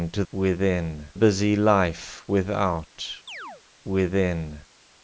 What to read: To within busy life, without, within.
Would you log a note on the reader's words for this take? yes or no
no